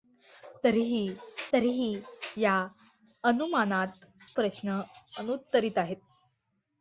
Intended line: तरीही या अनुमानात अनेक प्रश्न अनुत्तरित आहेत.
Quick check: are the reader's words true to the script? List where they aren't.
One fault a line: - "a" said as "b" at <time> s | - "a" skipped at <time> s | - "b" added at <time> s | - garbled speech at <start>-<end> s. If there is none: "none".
- "तरीही" added at 1.5 s
- "अनेक" skipped at 4.1 s